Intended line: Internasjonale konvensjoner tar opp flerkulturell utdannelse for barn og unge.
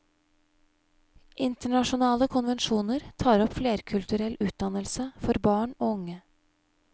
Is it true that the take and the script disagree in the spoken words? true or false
false